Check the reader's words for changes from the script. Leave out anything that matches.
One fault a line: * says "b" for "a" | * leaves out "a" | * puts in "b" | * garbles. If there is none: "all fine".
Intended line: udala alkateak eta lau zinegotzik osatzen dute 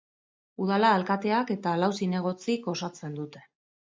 all fine